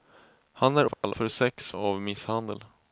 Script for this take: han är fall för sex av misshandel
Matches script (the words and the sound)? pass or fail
fail